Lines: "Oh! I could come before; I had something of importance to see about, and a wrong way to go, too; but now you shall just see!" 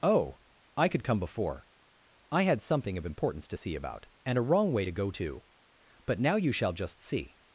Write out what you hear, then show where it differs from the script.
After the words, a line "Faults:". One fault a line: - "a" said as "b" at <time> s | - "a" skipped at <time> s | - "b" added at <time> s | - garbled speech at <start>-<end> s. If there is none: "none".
"Oh! I could come before; I had something of importance to see about, and a wrong way to go, too; but now you shall just see!"
Faults:
none